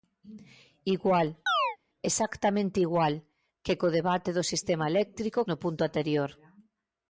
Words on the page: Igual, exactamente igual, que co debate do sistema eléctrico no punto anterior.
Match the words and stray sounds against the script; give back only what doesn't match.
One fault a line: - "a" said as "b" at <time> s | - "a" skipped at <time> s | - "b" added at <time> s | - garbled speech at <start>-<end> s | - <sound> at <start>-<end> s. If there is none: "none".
- chirp at 1.5-1.8 s